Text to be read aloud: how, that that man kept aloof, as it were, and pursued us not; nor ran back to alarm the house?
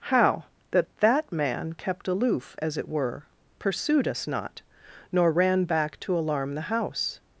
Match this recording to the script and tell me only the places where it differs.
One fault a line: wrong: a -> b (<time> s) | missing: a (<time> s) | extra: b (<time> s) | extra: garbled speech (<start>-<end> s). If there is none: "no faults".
missing: and (3.3 s)